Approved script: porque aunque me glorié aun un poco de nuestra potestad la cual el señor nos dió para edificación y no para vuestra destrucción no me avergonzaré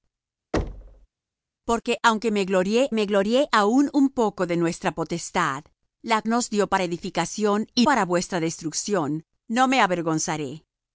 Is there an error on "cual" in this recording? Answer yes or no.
yes